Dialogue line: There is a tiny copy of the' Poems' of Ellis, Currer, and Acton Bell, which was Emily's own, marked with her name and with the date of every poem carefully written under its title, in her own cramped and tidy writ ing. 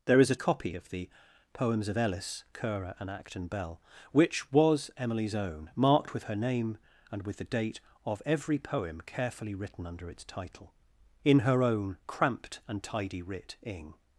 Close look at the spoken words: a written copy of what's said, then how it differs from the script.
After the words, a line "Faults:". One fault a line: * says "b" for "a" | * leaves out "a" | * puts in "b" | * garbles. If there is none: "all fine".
There is a copy of the' Poems' of Ellis, Currer, and Acton Bell, which was Emily's own, marked with her name and with the date of every poem carefully written under its title, in her own cramped and tidy writ ing.
Faults:
* leaves out "tiny"